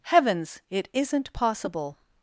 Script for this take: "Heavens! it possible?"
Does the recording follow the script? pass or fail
fail